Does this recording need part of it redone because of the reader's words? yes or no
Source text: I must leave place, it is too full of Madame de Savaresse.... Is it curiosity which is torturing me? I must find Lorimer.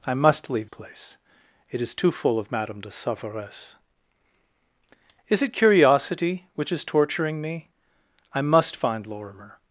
no